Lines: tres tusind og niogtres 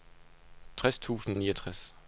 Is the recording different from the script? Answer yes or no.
no